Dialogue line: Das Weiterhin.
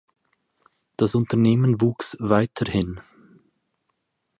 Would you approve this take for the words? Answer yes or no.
no